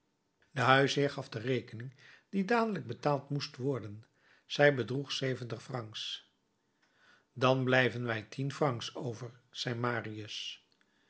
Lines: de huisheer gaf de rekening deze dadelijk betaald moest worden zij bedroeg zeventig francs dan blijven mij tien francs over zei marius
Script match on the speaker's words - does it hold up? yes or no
no